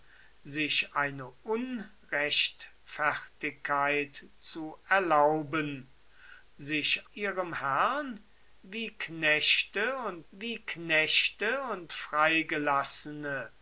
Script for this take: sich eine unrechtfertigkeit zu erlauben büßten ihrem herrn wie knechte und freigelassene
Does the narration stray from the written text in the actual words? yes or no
yes